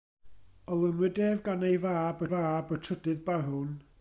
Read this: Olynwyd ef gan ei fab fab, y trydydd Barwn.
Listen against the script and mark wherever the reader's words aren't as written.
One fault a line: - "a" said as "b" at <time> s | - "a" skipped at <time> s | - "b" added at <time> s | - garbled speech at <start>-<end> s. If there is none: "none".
none